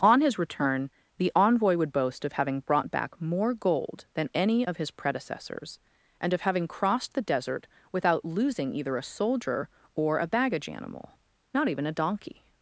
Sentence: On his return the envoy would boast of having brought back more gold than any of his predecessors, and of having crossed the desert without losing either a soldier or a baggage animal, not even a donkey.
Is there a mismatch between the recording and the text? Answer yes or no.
no